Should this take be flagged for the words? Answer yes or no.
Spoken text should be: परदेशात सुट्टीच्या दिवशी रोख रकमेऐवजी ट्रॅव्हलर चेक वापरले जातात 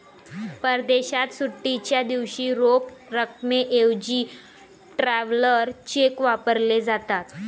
no